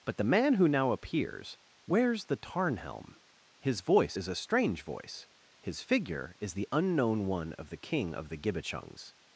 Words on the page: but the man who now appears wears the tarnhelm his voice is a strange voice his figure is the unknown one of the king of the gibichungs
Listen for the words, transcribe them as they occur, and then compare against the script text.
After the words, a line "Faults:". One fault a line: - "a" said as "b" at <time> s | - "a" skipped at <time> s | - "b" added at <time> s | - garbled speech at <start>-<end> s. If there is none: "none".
but the man who now appears wears the tarnhelm his voice is a strange voice his figure is the unknown one of the king of the gibichungs
Faults:
none